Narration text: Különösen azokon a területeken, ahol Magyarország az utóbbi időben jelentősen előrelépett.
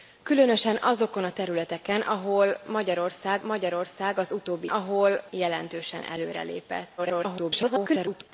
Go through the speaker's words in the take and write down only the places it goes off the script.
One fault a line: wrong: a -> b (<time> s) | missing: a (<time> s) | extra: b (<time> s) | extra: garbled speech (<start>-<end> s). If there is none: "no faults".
extra: Magyarország (3.4 s)
wrong: időben -> ahol (4.6 s)
extra: garbled speech (7.0-8.3 s)